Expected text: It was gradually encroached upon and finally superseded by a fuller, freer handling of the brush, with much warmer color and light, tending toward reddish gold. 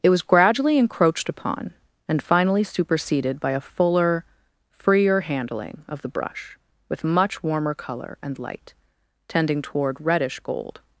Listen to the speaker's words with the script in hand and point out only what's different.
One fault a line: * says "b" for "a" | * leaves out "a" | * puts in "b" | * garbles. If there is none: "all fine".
all fine